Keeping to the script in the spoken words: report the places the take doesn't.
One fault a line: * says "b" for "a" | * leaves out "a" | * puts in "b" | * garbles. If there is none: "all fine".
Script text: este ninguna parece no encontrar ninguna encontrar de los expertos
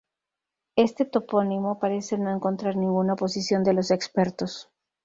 * says "topónimo" for "ninguna"
* says "oposición" for "encontrar"